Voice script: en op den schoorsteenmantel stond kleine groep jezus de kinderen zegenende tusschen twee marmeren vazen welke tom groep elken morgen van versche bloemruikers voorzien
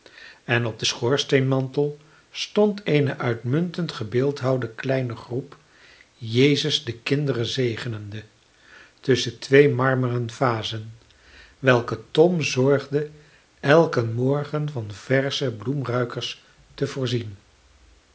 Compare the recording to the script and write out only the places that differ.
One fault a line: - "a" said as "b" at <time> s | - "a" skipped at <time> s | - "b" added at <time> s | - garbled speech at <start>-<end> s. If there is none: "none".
- "eene uitmuntend gebeeldhouwde" added at 2.8 s
- "groep" said as "zorgde" at 12.4 s
- "te" added at 16.7 s